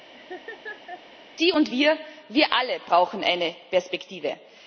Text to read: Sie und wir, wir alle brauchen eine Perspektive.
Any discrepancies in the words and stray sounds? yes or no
yes